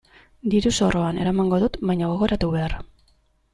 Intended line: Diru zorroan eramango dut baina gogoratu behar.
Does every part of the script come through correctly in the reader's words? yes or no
yes